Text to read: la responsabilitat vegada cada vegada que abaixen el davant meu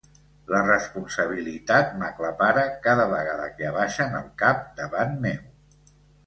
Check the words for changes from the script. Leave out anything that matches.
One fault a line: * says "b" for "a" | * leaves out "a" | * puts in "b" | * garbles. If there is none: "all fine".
* says "m'aclapara" for "vegada"
* puts in "cap"